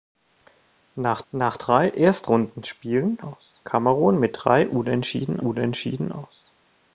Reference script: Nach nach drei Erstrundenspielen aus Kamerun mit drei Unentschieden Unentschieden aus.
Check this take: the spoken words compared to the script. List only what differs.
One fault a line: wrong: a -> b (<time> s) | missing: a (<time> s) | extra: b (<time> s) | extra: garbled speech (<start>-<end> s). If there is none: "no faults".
no faults